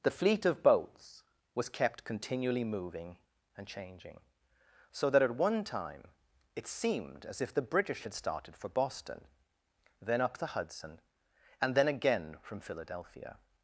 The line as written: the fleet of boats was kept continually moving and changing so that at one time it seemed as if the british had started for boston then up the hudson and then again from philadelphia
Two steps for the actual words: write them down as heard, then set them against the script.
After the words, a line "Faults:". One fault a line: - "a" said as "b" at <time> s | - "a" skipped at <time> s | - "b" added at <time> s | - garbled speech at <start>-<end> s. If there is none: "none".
the fleet of boats was kept continually moving and changing so that at one time it seemed as if the british had started for boston then up the hudson and then again from philadelphia
Faults:
none